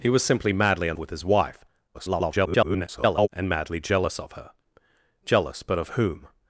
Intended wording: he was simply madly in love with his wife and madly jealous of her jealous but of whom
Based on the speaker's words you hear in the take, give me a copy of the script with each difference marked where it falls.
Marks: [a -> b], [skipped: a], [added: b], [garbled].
he was simply madly in [skipped: love] with his wife [garbled] and madly jealous of her jealous but of whom